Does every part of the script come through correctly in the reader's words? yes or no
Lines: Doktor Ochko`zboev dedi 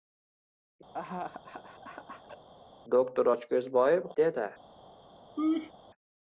yes